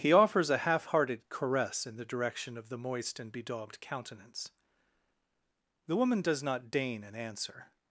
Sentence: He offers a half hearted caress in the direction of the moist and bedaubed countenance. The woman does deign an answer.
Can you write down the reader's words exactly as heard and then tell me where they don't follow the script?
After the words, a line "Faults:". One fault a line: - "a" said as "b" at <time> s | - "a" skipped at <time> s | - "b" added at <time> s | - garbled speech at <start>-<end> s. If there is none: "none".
He offers a half hearted caress in the direction of the moist and bedaubed countenance. The woman does not deign an answer.
Faults:
- "not" added at 6.4 s